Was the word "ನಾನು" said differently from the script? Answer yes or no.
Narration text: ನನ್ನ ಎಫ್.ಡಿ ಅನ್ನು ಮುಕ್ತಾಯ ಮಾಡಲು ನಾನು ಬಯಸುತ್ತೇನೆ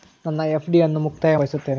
yes